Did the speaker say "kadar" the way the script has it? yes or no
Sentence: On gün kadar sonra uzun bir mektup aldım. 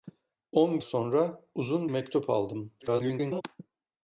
no